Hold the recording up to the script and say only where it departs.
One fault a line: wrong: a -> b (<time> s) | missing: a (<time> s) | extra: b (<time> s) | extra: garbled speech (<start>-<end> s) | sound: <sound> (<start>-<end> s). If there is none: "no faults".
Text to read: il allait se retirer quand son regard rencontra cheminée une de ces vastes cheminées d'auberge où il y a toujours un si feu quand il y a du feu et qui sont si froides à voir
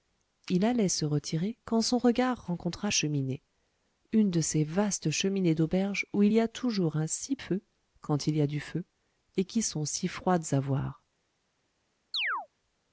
sound: chirp (12.1-12.5 s)